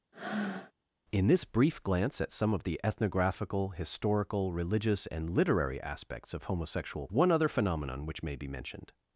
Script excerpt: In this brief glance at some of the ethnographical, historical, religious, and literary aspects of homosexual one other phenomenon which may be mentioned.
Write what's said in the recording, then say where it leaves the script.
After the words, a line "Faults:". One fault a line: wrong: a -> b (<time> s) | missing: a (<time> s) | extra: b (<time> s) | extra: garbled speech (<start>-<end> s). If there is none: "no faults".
In this brief glance at some of the ethnographical, historical, religious, and literary aspects of homosexual one other phenomenon which may be mentioned.
Faults:
no faults